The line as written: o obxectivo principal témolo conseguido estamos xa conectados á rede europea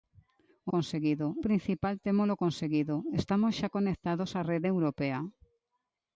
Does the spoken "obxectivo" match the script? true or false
false